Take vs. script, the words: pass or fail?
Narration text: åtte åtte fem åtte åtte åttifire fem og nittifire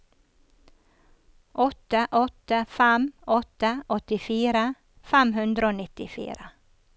fail